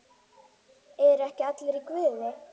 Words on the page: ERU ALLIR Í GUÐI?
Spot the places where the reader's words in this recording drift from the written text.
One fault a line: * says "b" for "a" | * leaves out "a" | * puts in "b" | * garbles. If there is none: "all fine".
* puts in "EKKI"